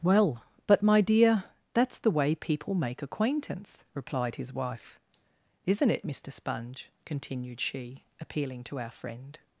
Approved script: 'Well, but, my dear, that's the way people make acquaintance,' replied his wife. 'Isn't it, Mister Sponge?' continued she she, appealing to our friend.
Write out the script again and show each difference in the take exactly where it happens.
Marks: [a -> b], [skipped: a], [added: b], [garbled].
'Well, but, my dear, that's the way people make acquaintance,' replied his wife. 'Isn't it, Mister Sponge?' continued she [skipped: she,] appealing to our friend.